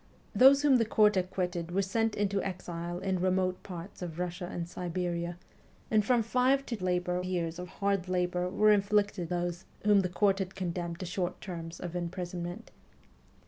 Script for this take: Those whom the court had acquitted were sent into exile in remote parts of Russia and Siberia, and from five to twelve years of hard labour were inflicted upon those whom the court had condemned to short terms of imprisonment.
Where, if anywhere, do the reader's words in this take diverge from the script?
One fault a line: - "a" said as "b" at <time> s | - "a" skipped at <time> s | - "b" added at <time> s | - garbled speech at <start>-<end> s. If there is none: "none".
- "had" skipped at 1.2 s
- "twelve" said as "labour" at 6.8 s
- "upon" skipped at 9.3 s